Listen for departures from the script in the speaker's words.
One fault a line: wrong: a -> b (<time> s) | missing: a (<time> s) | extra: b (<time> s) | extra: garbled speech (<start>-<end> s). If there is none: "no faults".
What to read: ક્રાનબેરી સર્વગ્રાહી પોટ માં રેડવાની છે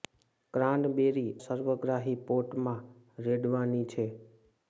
no faults